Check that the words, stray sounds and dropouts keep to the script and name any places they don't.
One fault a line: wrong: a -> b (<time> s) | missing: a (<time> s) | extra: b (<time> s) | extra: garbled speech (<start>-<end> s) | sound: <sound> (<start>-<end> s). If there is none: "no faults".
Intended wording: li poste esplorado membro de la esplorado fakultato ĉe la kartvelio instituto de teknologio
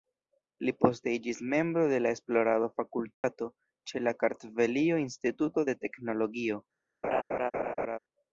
wrong: esplorado -> iĝis (1.2 s)
sound: dropout (3.1-3.2 s)
sound: laugh (7.0-8.0 s)